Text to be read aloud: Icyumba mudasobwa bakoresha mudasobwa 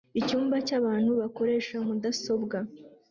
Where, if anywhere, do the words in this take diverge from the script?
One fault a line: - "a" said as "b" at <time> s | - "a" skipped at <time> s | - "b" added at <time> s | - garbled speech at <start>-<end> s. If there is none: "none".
- "mudasobwa" said as "cyabantu" at 0.7 s